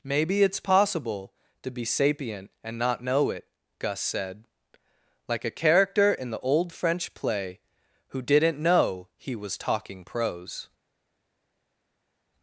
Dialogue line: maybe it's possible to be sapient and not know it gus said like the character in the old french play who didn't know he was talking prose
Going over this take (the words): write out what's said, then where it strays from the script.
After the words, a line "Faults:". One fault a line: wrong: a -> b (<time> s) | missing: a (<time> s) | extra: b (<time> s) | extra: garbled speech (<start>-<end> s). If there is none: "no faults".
maybe it's possible to be sapient and not know it gus said like a character in the old french play who didn't know he was talking prose
Faults:
wrong: the -> a (5.5 s)